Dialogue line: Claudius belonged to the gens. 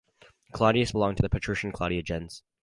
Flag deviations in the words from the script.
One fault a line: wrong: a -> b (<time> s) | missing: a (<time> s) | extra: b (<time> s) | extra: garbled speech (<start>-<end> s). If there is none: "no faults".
extra: patrician Claudia (1.3 s)